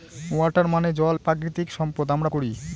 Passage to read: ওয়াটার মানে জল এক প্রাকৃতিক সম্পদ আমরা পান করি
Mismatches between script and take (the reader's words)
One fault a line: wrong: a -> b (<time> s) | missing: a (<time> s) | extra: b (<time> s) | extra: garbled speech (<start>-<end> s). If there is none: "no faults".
missing: এক (1.1 s)
missing: পান (2.3 s)